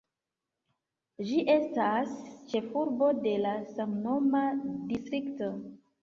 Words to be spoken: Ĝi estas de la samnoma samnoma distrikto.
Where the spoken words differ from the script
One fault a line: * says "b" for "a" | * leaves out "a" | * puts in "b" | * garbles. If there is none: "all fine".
* puts in "ĉefurbo"
* leaves out "samnoma"